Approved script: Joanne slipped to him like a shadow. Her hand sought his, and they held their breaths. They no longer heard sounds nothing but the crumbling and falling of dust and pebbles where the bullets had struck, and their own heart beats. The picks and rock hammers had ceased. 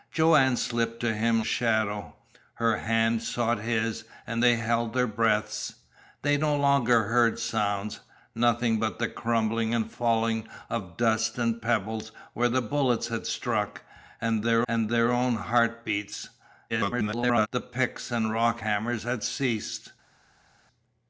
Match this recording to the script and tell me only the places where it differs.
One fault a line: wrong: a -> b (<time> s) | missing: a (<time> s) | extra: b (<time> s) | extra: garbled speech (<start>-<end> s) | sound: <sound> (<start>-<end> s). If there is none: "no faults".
missing: like a (1.4 s)
extra: and their (14.7 s)
extra: garbled speech (16.7-17.5 s)